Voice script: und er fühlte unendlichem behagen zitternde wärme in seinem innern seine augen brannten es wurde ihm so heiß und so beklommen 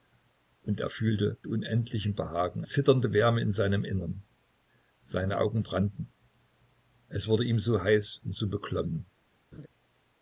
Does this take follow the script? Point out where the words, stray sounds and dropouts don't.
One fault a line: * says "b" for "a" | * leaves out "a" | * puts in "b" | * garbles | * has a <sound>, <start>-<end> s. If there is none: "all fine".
* has a laugh, 9.5-9.7 s